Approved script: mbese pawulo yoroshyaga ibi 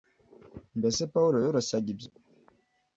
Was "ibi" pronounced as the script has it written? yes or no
no